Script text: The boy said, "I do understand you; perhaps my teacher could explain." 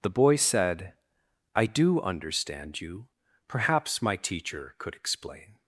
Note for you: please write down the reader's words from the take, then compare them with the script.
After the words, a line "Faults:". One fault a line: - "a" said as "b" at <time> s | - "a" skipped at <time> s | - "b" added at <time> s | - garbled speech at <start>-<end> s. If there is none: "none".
The boy said, "I do understand you; perhaps my teacher could explain."
Faults:
none